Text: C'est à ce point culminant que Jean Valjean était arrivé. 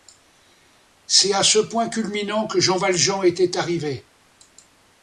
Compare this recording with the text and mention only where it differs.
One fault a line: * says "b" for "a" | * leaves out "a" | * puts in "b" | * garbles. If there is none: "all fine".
all fine